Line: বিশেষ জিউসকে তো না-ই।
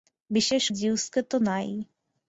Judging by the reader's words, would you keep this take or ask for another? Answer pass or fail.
pass